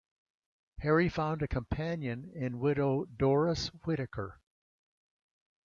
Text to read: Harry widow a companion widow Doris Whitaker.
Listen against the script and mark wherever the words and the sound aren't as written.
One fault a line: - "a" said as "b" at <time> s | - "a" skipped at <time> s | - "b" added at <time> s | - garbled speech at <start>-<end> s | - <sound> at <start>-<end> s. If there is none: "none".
- "widow" said as "found" at 1.1 s
- "in" added at 2.3 s